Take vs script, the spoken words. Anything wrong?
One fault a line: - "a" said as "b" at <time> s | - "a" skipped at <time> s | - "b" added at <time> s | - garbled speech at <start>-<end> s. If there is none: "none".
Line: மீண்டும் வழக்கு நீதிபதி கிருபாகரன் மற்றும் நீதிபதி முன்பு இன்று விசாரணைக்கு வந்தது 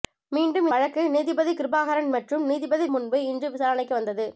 none